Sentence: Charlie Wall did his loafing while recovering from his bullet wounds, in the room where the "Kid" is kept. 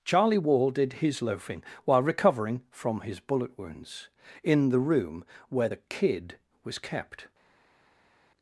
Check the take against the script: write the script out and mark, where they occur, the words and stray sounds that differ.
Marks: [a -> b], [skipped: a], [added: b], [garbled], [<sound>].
Charlie Wall did his loafing while recovering from his bullet wounds, in the room where the "Kid" [is -> was] kept.